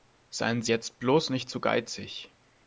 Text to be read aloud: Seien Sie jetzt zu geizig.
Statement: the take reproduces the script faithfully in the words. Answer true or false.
false